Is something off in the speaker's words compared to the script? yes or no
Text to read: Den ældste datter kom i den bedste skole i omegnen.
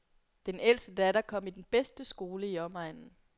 no